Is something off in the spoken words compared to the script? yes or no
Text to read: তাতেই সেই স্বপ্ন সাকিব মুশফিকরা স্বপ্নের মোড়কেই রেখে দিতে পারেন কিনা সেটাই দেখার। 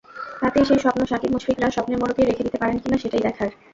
no